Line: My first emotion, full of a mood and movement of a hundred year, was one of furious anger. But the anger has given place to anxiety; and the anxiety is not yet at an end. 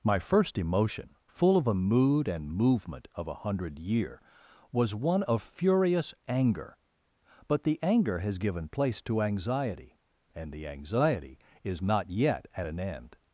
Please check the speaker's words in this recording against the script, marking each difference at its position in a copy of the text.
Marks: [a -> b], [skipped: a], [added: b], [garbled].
My first emotion, full of a mood and movement of a hundred year, was one of furious anger. But the anger has given place to anxiety; and the anxiety is not yet at an end.